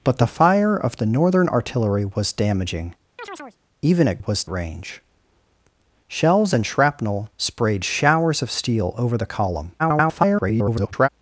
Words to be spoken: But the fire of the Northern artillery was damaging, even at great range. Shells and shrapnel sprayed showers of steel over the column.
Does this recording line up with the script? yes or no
no